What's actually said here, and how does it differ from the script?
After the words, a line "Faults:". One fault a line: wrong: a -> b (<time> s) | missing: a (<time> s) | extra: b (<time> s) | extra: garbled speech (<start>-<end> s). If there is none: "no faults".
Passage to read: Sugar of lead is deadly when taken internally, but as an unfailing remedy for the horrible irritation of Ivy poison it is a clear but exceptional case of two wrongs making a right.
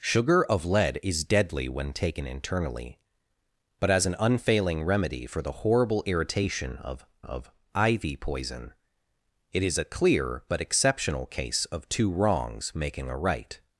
Sugar of lead is deadly when taken internally, but as an unfailing remedy for the horrible irritation of of Ivy poison it is a clear but exceptional case of two wrongs making a right.
Faults:
extra: of (7.2 s)